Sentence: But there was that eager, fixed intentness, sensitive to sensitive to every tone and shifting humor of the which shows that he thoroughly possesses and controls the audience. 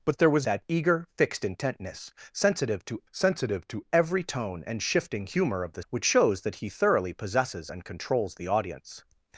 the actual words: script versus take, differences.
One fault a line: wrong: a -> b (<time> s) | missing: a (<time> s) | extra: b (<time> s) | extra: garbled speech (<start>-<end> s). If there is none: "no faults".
no faults